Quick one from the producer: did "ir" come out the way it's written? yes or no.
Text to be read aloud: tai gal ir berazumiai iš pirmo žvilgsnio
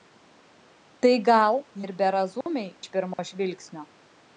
yes